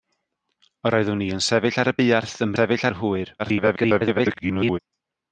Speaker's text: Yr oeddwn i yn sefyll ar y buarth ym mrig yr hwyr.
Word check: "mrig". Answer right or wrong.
wrong